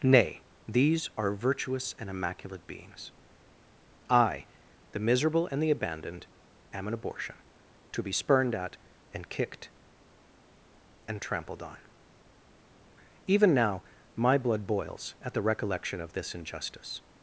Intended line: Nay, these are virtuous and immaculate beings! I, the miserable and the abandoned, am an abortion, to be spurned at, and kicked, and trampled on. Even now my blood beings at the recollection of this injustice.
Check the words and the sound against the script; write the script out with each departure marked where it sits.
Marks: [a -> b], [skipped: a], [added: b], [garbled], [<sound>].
Nay, these are virtuous and immaculate beings! I, the miserable and the abandoned, am an abortion, to be spurned at, and kicked, and trampled on. Even now my blood [beings -> boils] at the recollection of this injustice.